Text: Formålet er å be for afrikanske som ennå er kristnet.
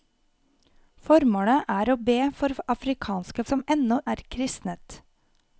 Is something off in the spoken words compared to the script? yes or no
no